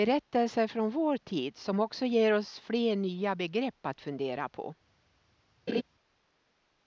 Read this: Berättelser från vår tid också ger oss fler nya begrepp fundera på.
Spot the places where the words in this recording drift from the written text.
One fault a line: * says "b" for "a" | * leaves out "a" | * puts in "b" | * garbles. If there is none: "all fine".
* puts in "som"
* puts in "att"